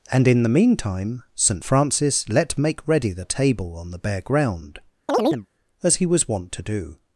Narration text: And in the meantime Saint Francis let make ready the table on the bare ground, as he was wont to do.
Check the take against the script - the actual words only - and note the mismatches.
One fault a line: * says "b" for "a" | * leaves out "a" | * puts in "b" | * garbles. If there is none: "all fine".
all fine